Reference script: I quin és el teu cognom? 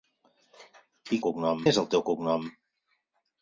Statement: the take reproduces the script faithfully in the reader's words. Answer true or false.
false